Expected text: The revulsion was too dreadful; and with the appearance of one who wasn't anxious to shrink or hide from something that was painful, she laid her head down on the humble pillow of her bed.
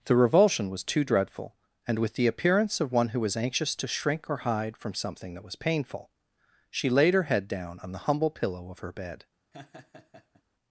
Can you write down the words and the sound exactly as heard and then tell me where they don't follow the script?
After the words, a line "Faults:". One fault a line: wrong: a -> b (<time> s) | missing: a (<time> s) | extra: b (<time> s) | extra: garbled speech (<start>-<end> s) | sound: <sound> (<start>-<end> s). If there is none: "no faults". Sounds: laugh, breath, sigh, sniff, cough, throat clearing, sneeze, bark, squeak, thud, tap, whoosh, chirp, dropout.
The revulsion was too dreadful; and with the appearance of one who was anxious to shrink or hide from something that was painful, she laid her head down on the humble pillow of her bed.
Faults:
wrong: wasn't -> was (3.2 s)
sound: laugh (9.5-10.4 s)